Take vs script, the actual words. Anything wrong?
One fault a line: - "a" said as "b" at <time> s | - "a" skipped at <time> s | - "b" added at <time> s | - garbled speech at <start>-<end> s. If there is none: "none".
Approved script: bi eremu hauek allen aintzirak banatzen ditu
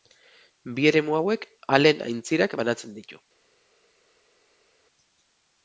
none